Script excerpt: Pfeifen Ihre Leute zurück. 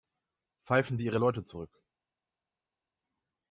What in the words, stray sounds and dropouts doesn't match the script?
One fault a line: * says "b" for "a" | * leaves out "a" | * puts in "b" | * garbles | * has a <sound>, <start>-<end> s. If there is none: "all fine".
* puts in "Sie"